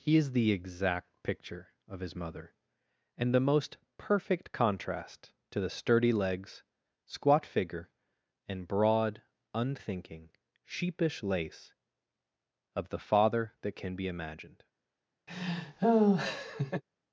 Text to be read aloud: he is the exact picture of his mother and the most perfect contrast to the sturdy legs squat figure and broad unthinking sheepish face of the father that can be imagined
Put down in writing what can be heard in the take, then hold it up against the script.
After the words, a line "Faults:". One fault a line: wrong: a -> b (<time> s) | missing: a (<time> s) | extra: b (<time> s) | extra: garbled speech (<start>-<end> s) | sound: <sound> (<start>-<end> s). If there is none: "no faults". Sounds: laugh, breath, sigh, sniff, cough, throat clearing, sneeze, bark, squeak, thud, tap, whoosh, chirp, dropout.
he is the exact picture of his mother and the most perfect contrast to the sturdy legs squat figure and broad unthinking sheepish lace of the father that can be imagined
Faults:
wrong: face -> lace (11.2 s)
sound: laugh (15.3-16.8 s)